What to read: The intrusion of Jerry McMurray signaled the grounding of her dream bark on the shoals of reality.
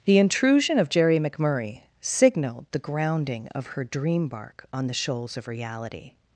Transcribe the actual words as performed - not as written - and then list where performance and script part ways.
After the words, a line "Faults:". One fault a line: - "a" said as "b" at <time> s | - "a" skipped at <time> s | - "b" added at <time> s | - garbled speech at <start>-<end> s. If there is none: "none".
The intrusion of Jerry McMurray signaled the grounding of her dream bark on the shoals of reality.
Faults:
none